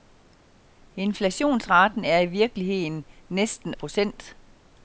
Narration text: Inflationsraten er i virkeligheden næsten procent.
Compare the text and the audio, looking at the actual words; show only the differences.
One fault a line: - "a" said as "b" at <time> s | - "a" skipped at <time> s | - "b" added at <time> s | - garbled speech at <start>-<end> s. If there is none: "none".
none